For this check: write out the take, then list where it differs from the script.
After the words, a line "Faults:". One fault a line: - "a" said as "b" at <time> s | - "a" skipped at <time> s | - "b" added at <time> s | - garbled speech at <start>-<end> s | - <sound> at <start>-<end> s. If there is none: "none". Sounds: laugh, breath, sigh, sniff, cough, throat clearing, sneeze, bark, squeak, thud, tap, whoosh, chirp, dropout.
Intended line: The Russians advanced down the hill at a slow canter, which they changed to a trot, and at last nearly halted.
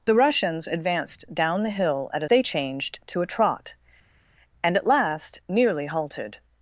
The Russians advanced down the hill at a they changed to a trot, and at last nearly halted.
Faults:
- "slow canter which" skipped at 2.3 s